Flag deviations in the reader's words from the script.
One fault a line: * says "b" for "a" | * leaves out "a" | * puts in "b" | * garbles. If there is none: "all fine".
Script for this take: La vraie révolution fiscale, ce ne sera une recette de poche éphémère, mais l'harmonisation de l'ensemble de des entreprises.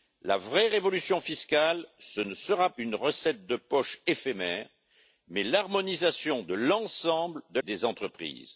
all fine